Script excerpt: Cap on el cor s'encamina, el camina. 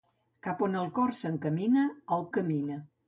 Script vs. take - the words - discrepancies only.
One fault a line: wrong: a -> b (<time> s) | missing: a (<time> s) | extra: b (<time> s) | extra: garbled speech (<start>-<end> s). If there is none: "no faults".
no faults